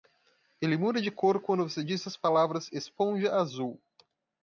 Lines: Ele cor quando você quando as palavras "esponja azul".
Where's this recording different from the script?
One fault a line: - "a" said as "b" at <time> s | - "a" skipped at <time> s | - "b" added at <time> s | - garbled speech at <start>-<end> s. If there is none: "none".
- "muda de" added at 0.8 s
- "quando" said as "diz" at 1.8 s